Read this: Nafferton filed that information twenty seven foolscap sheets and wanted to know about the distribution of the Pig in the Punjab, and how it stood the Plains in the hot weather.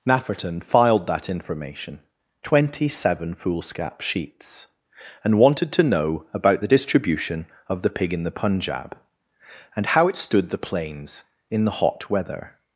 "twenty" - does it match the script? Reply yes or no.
yes